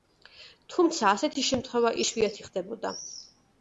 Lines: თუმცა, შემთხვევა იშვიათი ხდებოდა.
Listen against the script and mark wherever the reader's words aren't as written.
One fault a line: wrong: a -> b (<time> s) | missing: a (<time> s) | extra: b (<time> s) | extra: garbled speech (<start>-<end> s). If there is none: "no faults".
extra: ასეთი (1.1 s)